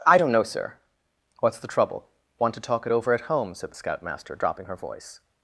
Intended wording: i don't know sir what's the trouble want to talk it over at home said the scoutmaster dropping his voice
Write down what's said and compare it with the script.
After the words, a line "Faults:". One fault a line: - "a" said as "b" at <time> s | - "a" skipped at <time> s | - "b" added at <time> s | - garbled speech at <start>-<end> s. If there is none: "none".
i don't know sir what's the trouble want to talk it over at home said the scoutmaster dropping her voice
Faults:
- "his" said as "her" at 4.7 s